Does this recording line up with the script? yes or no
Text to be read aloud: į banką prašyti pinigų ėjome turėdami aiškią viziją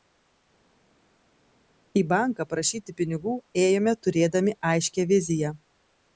yes